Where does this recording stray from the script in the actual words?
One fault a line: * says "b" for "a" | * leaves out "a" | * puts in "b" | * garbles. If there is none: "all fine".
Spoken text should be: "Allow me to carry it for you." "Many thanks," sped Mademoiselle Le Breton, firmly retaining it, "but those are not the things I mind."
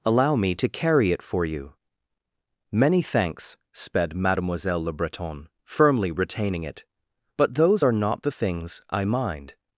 all fine